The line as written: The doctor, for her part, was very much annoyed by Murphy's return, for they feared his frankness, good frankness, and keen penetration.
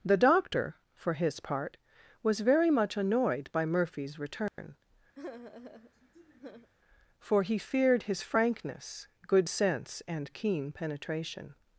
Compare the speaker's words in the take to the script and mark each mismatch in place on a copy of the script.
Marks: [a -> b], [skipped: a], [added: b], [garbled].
The doctor, for [her -> his] part, was very much annoyed by Murphy's return, for [they -> he] feared his frankness, good [frankness, -> sense] and keen penetration.